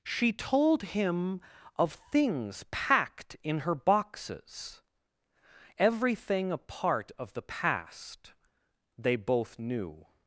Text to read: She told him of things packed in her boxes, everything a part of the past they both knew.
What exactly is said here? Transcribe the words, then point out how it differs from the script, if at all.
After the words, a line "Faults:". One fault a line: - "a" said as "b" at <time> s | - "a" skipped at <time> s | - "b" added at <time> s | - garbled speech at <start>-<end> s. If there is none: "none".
She told him of things packed in her boxes, everything a part of the past they both knew.
Faults:
none